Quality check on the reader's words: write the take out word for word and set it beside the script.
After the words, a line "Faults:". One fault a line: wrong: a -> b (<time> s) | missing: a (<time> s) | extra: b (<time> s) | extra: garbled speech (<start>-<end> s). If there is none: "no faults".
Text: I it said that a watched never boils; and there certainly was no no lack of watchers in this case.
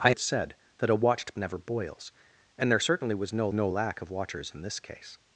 I it said that a watched never boils; and there certainly was no no lack of watchers in this case.
Faults:
no faults